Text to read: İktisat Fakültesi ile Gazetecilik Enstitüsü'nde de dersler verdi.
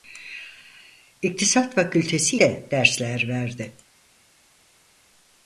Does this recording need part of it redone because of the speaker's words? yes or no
yes